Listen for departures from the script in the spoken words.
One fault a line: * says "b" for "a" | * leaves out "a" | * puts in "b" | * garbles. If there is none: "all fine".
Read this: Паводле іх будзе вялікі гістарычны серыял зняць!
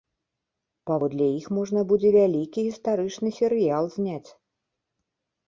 * puts in "можна"